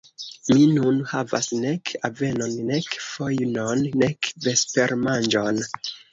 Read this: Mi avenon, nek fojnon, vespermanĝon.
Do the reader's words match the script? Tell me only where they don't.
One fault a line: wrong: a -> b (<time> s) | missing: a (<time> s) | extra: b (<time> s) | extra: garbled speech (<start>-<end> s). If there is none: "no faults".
extra: nun havas nek (0.8 s)
extra: nek (4.1 s)